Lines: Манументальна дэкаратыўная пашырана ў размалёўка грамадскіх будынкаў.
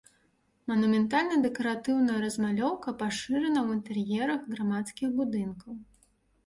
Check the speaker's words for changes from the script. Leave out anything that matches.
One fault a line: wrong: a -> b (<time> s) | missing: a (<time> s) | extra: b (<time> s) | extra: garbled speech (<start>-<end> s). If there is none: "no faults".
extra: размалёўка (2.3 s)
wrong: размалёўка -> інтэр'ерах (3.8 s)